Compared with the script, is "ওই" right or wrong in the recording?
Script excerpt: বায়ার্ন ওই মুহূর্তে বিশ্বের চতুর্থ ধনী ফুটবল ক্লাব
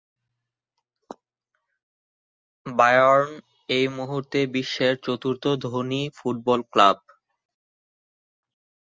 wrong